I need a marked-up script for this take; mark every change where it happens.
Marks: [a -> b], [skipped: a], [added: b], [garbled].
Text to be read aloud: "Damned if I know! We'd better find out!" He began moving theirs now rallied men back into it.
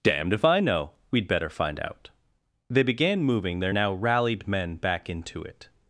"Damned if I know! We'd better find out!" [He -> They] began moving [theirs -> their] now rallied men back into it.